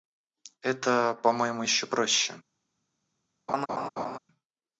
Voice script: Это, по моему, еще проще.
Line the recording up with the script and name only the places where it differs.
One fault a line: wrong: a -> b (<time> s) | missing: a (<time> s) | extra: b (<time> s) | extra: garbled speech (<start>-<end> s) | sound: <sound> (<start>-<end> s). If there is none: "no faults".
sound: laugh (3.5-4.2 s)